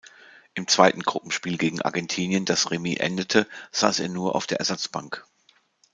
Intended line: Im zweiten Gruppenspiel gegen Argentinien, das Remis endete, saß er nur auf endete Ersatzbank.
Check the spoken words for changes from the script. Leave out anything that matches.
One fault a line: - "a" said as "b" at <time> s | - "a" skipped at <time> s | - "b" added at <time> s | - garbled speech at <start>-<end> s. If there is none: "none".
- "endete" said as "der" at 4.5 s